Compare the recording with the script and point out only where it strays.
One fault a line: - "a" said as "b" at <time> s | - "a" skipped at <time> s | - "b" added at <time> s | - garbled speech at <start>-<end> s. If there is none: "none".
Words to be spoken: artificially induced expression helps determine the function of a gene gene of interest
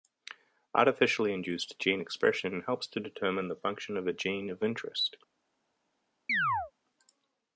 - "gene" added at 1.8 s
- "to" added at 2.9 s
- "gene" skipped at 4.5 s